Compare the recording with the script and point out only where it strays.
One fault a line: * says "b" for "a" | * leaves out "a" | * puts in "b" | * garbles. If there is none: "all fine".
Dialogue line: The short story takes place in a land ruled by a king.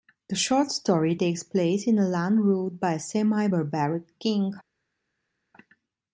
* puts in "semi barbaric"